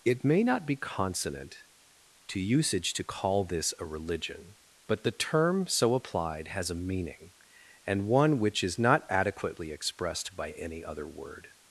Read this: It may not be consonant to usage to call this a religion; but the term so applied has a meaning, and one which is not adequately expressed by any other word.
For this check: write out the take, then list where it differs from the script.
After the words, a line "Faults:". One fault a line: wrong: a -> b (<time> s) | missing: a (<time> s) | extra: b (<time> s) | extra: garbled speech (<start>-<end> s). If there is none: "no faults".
It may not be consonant to usage to call this a religion; but the term so applied has a meaning, and one which is not adequately expressed by any other word.
Faults:
no faults